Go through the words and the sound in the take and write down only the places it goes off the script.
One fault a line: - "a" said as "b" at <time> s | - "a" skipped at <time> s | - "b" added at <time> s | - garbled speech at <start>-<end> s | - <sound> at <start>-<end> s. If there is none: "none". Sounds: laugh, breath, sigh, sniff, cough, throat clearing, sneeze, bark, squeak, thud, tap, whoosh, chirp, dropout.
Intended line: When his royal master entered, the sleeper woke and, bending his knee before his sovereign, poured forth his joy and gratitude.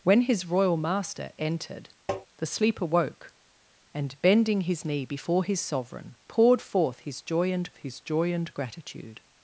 - tap at 2.1-2.3 s
- "his joy and" added at 7.8 s